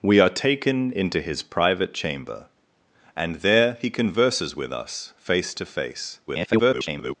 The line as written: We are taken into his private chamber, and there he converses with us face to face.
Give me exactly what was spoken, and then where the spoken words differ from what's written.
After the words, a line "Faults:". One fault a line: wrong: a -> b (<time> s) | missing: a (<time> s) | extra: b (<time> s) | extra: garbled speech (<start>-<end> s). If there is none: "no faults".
We are taken into his private chamber, and there he converses with us face to face. [garbled]
Faults:
extra: garbled speech (6.3-7.2 s)